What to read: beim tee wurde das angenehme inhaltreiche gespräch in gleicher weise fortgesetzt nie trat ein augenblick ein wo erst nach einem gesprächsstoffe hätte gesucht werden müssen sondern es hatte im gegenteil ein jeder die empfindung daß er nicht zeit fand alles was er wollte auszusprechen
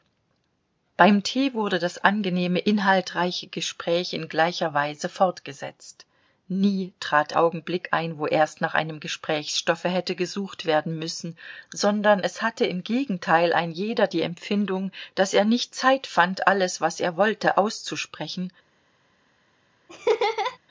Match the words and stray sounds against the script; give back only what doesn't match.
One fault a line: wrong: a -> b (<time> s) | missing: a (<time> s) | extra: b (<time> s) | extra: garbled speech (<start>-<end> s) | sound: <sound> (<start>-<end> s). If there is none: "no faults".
missing: ein (7.3 s)
sound: laugh (19.9-20.6 s)